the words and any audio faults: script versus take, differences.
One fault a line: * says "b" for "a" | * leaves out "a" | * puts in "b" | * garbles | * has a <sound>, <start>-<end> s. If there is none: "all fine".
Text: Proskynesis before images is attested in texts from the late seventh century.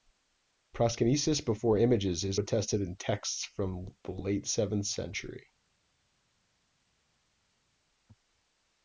all fine